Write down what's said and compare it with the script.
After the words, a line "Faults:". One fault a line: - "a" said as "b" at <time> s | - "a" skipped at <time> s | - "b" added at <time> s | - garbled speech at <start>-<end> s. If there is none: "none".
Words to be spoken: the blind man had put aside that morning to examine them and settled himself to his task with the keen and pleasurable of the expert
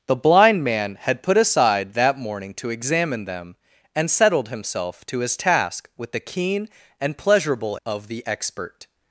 the blind man had put aside that morning to examine them and settled himself to his task with the keen and pleasurable of the expert
Faults:
none